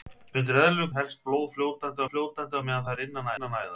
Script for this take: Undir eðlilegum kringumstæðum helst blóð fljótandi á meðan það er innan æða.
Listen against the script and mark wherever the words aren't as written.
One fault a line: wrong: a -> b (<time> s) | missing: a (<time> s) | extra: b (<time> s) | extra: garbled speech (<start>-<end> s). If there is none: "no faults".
missing: kringumstæðum (0.9 s)
extra: fljótandi (2.1 s)
extra: innan (3.3 s)